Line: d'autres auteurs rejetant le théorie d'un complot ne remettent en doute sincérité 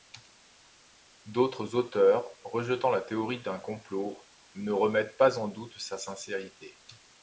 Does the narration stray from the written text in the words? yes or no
yes